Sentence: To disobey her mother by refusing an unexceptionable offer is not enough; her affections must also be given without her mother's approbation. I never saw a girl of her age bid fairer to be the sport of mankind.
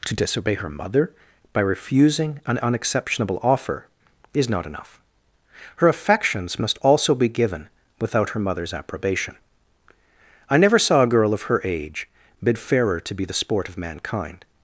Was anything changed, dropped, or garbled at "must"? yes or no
no